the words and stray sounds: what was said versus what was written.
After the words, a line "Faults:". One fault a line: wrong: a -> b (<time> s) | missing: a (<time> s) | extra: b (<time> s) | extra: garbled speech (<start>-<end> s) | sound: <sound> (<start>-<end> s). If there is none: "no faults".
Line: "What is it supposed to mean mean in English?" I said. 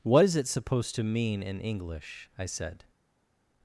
"What is it supposed to mean in English?" I said.
Faults:
missing: mean (1.4 s)